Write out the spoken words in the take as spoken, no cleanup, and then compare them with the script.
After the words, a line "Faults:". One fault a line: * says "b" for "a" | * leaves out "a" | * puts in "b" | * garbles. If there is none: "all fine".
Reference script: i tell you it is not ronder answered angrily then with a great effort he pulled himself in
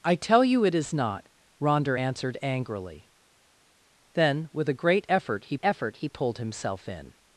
i tell you it is not ronder answered angrily then with a great effort he effort he pulled himself in
Faults:
* puts in "effort he"